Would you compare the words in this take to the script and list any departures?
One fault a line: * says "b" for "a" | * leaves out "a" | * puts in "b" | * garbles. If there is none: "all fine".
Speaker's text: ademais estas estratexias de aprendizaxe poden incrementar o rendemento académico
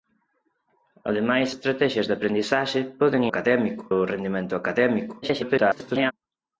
* leaves out "estas"
* says "académico" for "incrementar"
* garbles